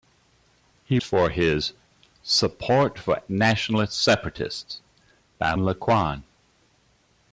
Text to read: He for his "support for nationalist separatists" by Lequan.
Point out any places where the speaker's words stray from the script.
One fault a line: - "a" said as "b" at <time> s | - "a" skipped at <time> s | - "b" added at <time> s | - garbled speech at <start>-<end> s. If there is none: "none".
none